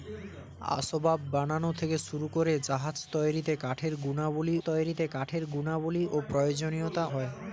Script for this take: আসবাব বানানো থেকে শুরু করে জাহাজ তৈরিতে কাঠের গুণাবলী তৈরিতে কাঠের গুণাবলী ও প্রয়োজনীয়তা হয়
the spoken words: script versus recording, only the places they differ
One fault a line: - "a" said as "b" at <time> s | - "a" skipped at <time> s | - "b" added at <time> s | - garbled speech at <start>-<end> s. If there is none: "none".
none